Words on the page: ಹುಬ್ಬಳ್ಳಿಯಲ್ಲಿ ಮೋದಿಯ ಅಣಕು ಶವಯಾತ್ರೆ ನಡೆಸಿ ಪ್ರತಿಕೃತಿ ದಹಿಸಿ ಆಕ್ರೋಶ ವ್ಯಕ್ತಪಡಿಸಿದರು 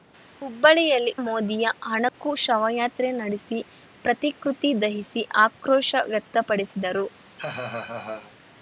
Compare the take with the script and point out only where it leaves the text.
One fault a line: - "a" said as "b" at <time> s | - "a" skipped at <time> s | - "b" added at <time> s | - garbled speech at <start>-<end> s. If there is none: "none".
none